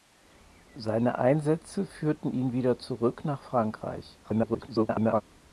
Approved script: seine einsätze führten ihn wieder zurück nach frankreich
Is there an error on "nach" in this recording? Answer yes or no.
no